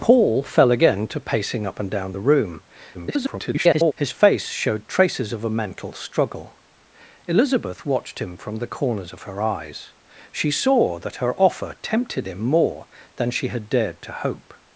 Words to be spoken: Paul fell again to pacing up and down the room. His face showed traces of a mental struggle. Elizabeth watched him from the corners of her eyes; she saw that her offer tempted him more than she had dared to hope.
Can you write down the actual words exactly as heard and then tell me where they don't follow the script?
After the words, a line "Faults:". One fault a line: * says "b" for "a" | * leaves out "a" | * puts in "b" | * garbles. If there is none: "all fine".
Paul fell again to pacing up and down the room. [garbled] His face showed traces of a mental struggle. Elizabeth watched him from the corners of her eyes; she saw that her offer tempted him more than she had dared to hope.
Faults:
* garbles